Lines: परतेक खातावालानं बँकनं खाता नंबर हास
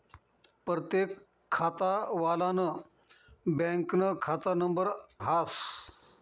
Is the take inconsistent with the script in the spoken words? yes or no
no